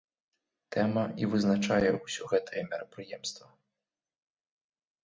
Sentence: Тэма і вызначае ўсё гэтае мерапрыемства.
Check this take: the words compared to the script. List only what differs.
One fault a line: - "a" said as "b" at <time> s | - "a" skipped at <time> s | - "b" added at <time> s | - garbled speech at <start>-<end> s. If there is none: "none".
none